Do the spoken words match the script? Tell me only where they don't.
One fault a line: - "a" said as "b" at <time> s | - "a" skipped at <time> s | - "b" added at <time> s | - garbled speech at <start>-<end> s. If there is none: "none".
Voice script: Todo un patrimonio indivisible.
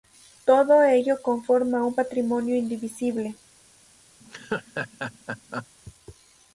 - "ello conforma" added at 0.8 s